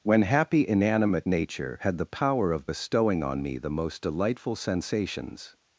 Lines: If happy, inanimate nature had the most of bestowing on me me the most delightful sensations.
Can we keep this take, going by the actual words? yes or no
no